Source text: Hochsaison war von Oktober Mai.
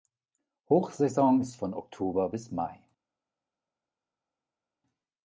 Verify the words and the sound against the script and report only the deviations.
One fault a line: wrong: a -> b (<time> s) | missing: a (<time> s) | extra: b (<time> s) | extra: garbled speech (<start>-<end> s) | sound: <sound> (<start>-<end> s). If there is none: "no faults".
wrong: war -> ist (1.4 s)
extra: bis (2.3 s)